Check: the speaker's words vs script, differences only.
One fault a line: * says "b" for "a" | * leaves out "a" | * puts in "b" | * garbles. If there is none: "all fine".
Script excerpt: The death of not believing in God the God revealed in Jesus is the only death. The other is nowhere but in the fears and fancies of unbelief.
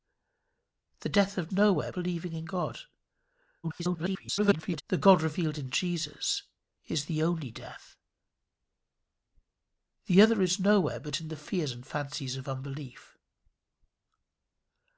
* says "nowhere" for "not"
* garbles